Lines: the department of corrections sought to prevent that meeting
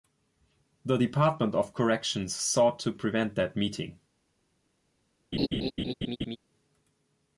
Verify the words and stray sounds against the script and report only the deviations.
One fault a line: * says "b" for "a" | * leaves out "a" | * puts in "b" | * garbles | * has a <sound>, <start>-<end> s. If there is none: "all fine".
* has a laugh, 5.3-6.4 s